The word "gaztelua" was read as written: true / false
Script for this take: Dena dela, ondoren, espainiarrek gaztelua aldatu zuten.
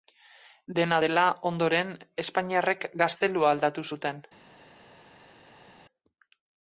true